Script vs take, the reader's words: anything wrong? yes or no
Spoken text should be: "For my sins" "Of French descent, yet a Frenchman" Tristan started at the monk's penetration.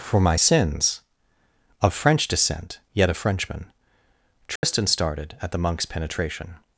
no